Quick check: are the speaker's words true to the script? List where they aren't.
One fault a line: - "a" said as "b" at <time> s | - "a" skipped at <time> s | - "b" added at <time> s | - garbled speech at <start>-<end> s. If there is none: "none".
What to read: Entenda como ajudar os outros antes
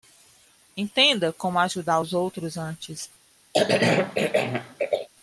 none